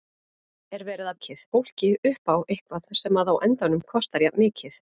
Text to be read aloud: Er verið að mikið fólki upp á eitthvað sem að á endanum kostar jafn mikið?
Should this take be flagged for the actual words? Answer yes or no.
no